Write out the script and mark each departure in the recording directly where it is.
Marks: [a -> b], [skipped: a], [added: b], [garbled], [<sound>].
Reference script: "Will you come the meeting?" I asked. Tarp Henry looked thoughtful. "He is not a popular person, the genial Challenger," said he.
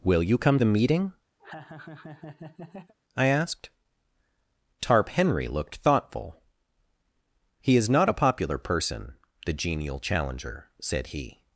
"Will you come the meeting?" [laugh] I asked. Tarp Henry looked thoughtful. "He is not a popular person, the genial Challenger," said he.